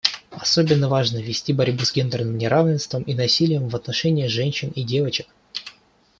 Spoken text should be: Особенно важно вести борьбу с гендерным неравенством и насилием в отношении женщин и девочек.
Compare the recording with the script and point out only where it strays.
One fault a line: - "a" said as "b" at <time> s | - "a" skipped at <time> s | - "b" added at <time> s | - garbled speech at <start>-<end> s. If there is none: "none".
none